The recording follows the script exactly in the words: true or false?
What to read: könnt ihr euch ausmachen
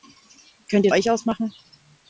true